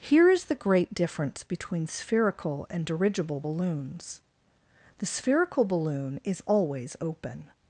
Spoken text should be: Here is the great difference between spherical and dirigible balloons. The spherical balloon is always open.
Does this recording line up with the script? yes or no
yes